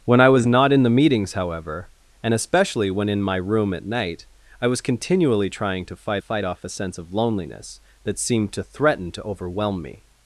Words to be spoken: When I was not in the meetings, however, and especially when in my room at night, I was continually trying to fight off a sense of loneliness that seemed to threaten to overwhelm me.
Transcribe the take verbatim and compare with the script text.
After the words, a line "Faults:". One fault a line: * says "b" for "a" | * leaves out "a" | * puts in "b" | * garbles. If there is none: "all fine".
When I was not in the meetings, however, and especially when in my room at night, I was continually trying to fight fight off a sense of loneliness that seemed to threaten to overwhelm me.
Faults:
* puts in "fight"